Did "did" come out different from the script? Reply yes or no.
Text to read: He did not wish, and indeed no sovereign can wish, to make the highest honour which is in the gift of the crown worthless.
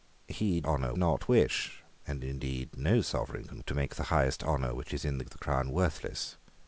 yes